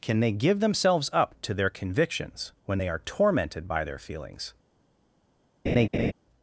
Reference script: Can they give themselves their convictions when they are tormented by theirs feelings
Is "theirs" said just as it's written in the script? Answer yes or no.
no